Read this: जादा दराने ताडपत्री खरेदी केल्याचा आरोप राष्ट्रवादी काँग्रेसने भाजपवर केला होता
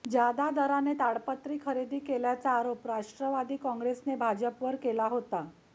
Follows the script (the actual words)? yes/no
yes